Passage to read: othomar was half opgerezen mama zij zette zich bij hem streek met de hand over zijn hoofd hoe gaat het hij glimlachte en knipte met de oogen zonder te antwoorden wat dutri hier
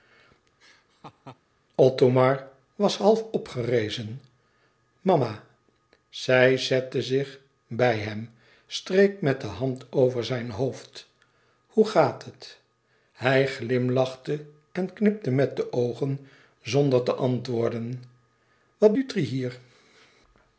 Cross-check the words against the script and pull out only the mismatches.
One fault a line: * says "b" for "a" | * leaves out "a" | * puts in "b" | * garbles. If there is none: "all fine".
all fine